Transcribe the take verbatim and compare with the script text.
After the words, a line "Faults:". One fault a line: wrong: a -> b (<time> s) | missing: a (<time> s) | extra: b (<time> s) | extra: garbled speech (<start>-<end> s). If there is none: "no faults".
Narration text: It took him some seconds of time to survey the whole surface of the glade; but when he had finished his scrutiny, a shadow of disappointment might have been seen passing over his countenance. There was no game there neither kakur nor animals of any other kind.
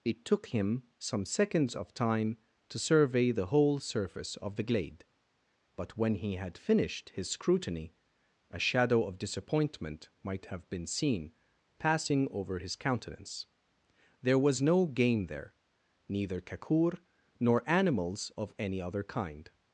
It took him some seconds of time to survey the whole surface of the glade; but when he had finished his scrutiny, a shadow of disappointment might have been seen passing over his countenance. There was no game there neither kakur nor animals of any other kind.
Faults:
no faults